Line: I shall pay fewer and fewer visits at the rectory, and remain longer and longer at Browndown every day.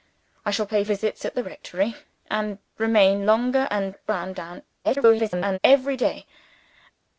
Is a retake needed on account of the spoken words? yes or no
yes